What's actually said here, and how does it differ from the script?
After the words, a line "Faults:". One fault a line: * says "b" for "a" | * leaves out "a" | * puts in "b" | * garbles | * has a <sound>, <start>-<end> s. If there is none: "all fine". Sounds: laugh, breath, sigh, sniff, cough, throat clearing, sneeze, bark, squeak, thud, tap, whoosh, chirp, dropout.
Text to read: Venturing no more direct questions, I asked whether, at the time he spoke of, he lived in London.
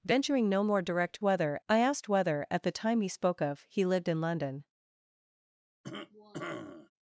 Venturing no more direct whether, I asked whether, at the time he spoke of, he lived in London.
Faults:
* says "whether" for "questions"
* has a cough, 5.8-6.9 s